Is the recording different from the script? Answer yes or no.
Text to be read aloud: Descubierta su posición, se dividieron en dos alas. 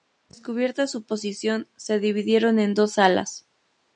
no